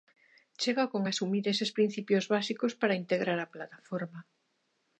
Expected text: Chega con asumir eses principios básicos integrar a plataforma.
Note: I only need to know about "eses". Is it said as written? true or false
true